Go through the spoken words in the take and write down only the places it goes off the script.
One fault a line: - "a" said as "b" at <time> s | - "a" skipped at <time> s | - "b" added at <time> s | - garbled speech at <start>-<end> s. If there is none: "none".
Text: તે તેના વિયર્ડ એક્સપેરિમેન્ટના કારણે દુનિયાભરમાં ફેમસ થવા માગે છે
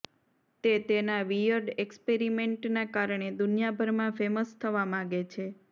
none